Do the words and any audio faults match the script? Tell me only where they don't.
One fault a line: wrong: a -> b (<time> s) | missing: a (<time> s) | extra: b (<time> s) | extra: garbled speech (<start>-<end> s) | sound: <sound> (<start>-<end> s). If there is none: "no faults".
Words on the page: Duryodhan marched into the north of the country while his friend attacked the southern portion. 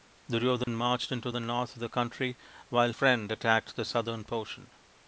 sound: dropout (0.6-0.7 s)
missing: his (2.9 s)